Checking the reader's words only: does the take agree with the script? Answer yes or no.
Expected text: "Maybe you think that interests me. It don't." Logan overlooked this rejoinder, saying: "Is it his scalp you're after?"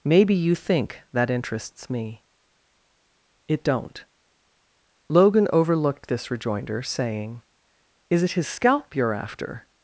yes